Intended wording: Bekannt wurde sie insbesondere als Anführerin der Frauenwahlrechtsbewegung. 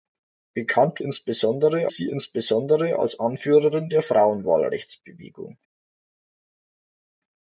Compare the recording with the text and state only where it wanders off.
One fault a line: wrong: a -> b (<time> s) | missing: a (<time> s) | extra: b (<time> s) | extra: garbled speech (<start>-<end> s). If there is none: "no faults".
wrong: wurde -> insbesondere (1.0 s)